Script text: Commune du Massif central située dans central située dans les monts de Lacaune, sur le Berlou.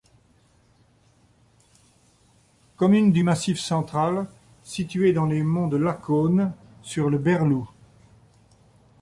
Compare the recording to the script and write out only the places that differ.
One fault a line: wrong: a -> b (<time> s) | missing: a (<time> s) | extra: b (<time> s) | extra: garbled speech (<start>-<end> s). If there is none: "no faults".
missing: central située dans (5.3 s)